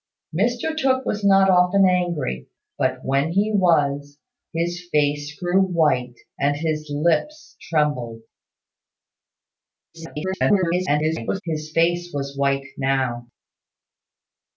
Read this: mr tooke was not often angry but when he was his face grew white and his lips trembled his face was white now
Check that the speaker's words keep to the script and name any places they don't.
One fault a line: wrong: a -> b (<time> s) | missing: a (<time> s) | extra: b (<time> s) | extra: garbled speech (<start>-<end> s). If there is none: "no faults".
extra: garbled speech (9.9-11.4 s)